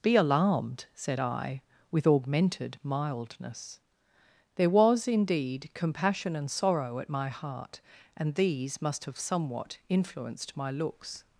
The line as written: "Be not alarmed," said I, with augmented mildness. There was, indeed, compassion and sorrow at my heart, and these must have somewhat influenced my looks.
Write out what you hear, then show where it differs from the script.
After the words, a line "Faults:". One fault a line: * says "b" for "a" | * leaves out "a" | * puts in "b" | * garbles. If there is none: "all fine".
"Be alarmed," said I, with augmented mildness. There was, indeed, compassion and sorrow at my heart, and these must have somewhat influenced my looks.
Faults:
* leaves out "not"